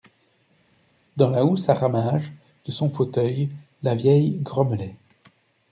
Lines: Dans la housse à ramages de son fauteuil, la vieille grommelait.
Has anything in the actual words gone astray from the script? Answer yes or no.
no